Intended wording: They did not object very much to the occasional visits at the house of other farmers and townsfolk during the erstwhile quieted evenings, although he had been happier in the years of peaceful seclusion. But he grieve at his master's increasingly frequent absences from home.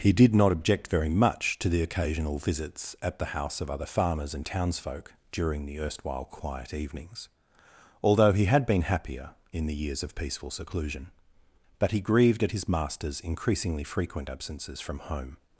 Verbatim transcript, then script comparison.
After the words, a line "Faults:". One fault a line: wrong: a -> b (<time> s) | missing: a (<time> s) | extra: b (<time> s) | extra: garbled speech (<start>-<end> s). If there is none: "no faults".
He did not object very much to the occasional visits at the house of other farmers and townsfolk during the erstwhile quiet evenings, although he had been happier in the years of peaceful seclusion. But he grieved at his master's increasingly frequent absences from home.
Faults:
wrong: They -> He (0.0 s)
wrong: quieted -> quiet (6.2 s)
wrong: grieve -> grieved (12.0 s)